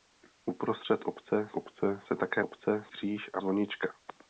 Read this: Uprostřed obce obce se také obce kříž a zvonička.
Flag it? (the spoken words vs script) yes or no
no